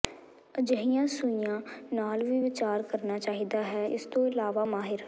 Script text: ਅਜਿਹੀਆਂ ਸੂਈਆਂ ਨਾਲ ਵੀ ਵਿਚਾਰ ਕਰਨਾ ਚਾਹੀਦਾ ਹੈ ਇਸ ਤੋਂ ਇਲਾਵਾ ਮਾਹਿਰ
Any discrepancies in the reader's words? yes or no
no